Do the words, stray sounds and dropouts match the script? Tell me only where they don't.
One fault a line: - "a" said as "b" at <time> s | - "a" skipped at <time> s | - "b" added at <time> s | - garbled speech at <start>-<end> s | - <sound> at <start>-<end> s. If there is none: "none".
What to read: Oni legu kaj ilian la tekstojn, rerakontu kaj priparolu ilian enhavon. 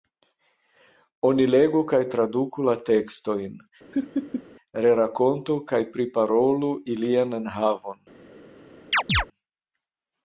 - "ilian" said as "traduku" at 2.1 s
- laugh at 3.9-4.4 s
- chirp at 8.9-9.3 s